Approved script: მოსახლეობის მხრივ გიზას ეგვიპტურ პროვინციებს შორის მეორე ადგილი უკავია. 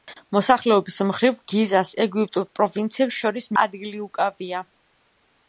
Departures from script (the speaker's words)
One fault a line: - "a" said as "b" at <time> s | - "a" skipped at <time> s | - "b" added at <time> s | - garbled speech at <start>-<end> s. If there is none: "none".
- "მეორე" skipped at 3.5 s